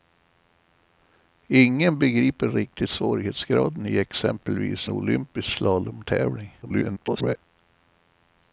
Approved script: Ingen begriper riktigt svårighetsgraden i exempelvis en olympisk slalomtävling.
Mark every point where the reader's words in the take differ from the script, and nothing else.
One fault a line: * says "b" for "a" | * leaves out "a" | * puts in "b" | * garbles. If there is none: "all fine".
* leaves out "en"
* garbles